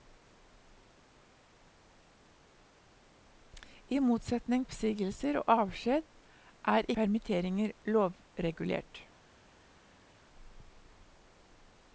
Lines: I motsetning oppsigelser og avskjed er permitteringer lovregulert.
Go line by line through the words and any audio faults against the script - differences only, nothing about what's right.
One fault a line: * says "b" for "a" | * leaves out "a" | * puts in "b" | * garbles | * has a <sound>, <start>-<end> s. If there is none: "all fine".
all fine